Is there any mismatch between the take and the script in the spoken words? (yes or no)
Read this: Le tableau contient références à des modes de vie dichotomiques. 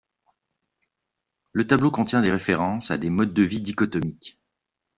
yes